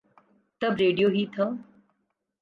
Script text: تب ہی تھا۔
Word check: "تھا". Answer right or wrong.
right